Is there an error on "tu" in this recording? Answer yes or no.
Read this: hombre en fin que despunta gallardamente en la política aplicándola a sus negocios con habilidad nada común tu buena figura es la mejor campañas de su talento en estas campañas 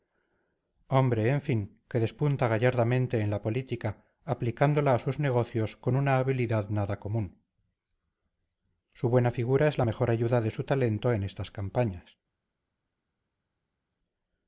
yes